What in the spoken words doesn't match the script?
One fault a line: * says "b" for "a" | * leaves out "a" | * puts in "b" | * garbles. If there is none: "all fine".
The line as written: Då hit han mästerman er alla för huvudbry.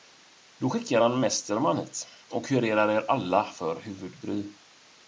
* says "skickar" for "hit"
* puts in "hit och kurerar"